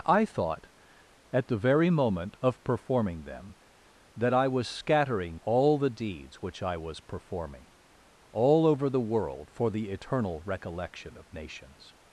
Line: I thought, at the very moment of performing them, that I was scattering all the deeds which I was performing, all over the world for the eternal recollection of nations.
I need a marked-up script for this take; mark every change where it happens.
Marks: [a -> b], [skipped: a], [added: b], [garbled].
I thought, at the very moment of performing them, that I was scattering all the deeds which I was performing, all over the world for the eternal recollection of nations.